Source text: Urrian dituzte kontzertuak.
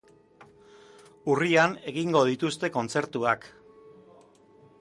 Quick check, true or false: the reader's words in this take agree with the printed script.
false